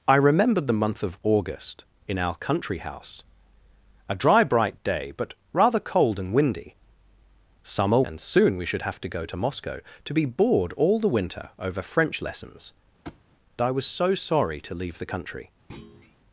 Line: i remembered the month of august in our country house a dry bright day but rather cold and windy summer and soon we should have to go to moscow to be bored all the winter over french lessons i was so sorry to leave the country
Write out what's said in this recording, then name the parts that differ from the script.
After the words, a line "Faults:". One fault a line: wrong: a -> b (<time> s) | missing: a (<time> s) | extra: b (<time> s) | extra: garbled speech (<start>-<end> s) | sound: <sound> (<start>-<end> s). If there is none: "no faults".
i remembered the month of august in our country house a dry bright day but rather cold and windy summer and soon we should have to go to moscow to be bored all the winter over french lessons i was so sorry to leave the country
Faults:
sound: thud (13.0-13.2 s)
sound: thud (15.7-16.2 s)